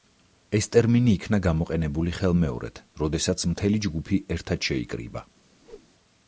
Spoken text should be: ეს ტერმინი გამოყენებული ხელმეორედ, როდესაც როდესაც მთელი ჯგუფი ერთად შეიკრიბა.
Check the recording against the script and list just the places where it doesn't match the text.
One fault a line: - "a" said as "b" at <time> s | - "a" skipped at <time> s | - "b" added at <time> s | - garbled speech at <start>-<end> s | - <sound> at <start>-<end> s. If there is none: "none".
- "იქნა" added at 1.2 s
- "როდესაც" skipped at 3.5 s
- whoosh at 5.6-5.9 s